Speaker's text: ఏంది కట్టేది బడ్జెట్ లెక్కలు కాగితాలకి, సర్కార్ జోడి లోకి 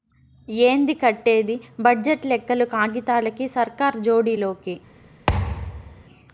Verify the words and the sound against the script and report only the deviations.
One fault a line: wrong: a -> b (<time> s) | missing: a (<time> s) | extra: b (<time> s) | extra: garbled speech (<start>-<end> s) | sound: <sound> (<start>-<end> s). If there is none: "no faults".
sound: thud (5.3-6.0 s)